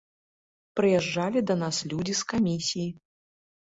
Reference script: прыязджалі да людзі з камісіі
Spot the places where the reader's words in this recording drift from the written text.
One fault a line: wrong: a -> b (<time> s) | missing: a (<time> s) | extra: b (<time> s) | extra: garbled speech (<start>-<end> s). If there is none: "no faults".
extra: нас (1.6 s)